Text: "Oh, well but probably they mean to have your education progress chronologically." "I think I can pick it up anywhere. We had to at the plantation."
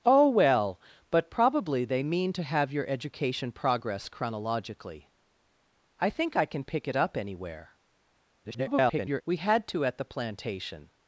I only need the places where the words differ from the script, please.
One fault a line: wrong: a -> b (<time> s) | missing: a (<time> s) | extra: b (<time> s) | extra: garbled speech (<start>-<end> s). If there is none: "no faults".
extra: garbled speech (8.4-9.2 s)